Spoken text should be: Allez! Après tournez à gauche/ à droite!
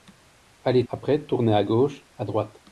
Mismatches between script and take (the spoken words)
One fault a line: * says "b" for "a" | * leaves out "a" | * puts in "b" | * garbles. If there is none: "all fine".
all fine